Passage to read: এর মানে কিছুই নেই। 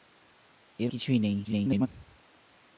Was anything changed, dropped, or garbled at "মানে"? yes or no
yes